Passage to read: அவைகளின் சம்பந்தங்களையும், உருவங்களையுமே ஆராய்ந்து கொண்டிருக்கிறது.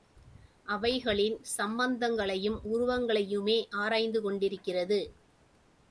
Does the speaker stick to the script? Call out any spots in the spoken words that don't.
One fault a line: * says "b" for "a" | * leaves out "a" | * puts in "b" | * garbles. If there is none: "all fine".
all fine